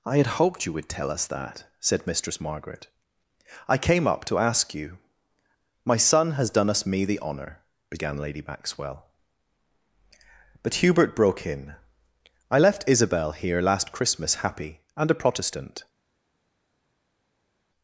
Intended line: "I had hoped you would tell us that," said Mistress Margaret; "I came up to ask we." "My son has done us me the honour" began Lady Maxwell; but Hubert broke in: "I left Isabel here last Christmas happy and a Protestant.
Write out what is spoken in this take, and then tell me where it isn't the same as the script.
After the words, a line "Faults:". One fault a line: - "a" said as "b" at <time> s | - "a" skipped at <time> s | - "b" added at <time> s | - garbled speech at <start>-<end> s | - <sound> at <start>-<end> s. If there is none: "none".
"I had hoped you would tell us that," said Mistress Margaret; "I came up to ask you." "My son has done us me the honour" began Lady Maxwell; but Hubert broke in: "I left Isabel here last Christmas happy and a Protestant.
Faults:
- "we" said as "you" at 4.7 s